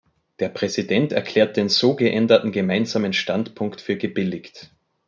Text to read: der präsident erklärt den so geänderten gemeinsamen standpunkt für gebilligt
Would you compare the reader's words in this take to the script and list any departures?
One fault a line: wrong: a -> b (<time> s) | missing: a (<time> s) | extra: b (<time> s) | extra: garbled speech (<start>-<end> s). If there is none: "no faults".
no faults